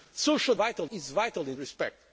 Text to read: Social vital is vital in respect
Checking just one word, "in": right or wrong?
right